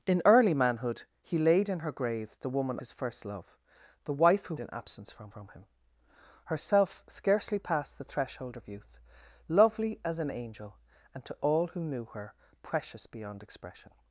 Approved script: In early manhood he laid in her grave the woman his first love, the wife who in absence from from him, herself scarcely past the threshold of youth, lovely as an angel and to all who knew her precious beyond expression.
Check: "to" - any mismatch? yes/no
no